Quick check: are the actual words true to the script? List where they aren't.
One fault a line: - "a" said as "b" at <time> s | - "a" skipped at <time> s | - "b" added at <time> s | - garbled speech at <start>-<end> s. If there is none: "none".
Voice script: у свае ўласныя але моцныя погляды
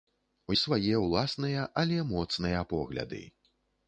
none